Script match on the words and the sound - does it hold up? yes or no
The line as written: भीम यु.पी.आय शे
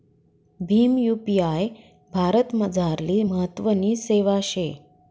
no